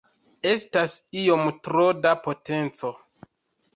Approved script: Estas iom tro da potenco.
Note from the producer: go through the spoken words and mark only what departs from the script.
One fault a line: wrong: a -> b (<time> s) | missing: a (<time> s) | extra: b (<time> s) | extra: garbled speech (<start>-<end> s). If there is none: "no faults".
no faults